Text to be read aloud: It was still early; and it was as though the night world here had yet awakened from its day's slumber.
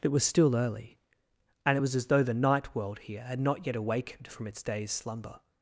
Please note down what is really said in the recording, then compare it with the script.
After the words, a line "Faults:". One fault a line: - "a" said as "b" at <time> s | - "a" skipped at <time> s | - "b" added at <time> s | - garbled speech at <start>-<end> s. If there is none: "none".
It was still early; and it was as though the night world here had not yet awakened from its day's slumber.
Faults:
- "not" added at 3.4 s